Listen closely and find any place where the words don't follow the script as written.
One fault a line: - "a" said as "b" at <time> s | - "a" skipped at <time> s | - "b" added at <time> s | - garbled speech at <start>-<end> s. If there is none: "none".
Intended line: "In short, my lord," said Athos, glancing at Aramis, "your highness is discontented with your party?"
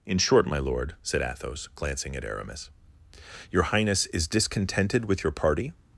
none